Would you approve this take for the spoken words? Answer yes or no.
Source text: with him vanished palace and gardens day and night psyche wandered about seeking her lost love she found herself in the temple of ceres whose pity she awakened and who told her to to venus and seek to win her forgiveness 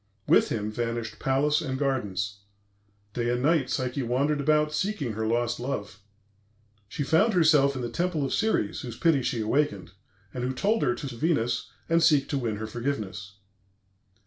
yes